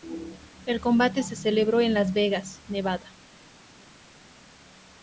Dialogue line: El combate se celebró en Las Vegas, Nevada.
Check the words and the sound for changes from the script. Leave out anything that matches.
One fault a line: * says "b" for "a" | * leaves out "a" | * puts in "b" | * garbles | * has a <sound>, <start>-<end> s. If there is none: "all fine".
all fine